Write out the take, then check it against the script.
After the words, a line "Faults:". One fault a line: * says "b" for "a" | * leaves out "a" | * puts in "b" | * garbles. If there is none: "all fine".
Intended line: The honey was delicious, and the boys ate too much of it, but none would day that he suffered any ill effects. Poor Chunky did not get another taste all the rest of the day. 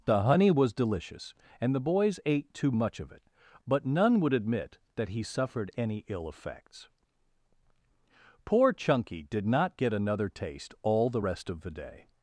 The honey was delicious, and the boys ate too much of it, but none would admit that he suffered any ill effects. Poor Chunky did not get another taste all the rest of the day.
Faults:
* says "admit" for "day"